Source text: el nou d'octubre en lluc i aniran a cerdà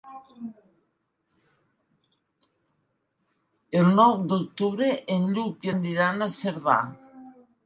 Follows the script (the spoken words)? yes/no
yes